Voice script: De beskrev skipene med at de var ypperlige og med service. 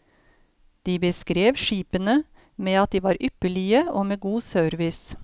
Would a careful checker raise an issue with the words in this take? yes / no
yes